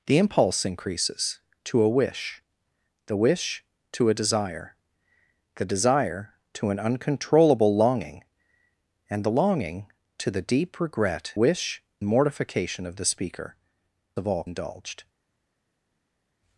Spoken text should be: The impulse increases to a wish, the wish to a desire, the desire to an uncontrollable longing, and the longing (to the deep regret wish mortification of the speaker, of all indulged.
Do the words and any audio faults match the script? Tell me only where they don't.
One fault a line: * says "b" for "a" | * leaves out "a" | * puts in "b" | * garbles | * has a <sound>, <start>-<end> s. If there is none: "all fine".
all fine